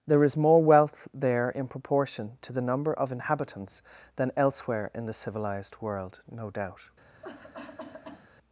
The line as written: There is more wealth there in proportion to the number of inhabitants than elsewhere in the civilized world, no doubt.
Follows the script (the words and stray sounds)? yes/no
no